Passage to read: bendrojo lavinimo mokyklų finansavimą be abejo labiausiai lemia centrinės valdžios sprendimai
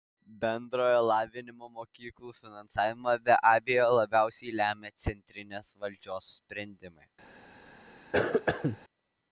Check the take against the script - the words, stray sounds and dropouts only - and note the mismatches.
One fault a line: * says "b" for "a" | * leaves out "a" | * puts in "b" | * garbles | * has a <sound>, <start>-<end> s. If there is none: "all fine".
* has a cough, 8.1-8.8 s